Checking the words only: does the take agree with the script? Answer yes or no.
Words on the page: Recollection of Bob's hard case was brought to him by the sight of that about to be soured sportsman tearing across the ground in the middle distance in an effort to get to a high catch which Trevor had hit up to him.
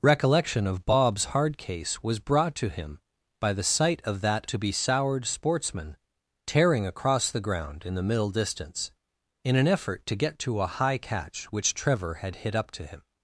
no